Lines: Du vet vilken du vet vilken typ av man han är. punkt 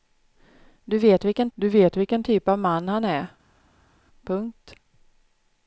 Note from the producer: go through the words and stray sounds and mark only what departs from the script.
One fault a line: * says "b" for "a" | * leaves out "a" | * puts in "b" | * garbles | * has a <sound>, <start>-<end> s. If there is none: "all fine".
all fine